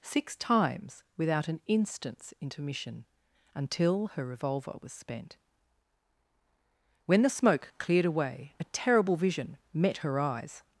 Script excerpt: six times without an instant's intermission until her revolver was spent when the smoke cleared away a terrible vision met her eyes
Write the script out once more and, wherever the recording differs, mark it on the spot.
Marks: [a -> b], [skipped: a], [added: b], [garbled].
six times without an instant's intermission until her revolver was spent when the smoke cleared away a terrible vision met her eyes